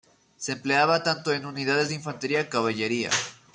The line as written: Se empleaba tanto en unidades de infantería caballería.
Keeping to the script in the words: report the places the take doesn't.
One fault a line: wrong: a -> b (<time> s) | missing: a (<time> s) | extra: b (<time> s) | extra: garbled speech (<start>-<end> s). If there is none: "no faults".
no faults